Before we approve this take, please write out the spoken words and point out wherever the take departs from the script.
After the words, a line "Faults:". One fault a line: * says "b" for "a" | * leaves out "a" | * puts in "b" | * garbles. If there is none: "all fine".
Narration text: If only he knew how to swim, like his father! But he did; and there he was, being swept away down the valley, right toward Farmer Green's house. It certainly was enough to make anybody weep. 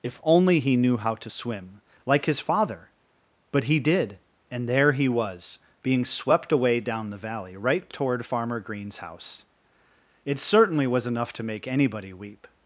If only he knew how to swim, like his father! But he did; and there he was, being swept away down the valley, right toward Farmer Green's house. It certainly was enough to make anybody weep.
Faults:
all fine